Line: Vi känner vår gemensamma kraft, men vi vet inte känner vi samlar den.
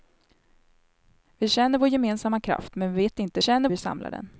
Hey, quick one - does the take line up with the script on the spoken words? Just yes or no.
yes